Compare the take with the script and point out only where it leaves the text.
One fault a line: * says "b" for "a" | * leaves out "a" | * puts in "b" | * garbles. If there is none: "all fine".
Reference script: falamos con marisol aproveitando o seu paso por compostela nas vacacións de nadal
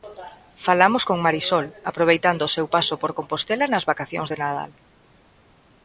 all fine